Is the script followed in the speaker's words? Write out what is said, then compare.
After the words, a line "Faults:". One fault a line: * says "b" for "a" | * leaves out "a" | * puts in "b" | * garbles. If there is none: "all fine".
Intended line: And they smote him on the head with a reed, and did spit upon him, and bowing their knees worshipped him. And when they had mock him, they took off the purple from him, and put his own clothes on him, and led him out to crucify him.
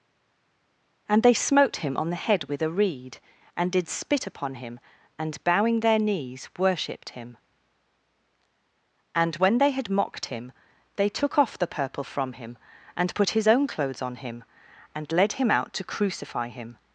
And they smote him on the head with a reed, and did spit upon him, and bowing their knees worshipped him. And when they had mocked him, they took off the purple from him, and put his own clothes on him, and led him out to crucify him.
Faults:
* says "mocked" for "mock"